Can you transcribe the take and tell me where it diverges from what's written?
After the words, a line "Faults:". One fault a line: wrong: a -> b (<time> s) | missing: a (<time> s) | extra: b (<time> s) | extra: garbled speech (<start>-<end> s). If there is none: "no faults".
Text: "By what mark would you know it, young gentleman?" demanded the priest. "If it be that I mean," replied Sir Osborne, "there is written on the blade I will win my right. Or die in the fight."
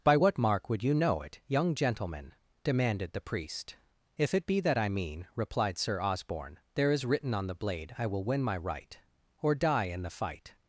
"By what mark would you know it, young gentleman?" demanded the priest. "If it be that I mean," replied Sir Osborne, "there is written on the blade I will win my right. Or die in the fight."
Faults:
no faults